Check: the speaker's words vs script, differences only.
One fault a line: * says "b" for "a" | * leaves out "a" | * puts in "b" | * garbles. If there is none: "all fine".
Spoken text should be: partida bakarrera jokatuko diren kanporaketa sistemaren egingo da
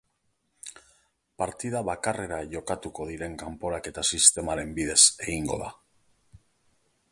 * puts in "bidez"